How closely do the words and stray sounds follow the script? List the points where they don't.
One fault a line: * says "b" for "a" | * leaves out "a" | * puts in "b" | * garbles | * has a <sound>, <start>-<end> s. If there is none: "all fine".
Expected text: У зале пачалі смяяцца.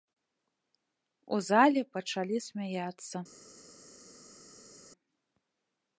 all fine